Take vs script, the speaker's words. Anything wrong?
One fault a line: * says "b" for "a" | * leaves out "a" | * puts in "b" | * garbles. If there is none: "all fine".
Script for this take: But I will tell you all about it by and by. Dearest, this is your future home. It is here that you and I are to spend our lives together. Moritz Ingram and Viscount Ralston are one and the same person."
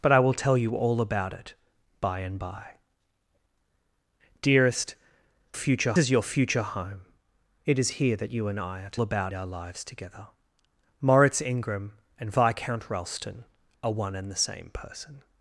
* says "future" for "this"
* says "about" for "spend"